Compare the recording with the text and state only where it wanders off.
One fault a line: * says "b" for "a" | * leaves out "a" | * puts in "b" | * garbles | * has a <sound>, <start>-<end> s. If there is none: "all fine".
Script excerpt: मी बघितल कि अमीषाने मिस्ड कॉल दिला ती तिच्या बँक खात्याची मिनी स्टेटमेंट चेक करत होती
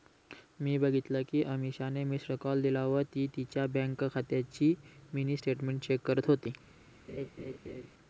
* puts in "व"
* has a laugh, 7.1-7.9 s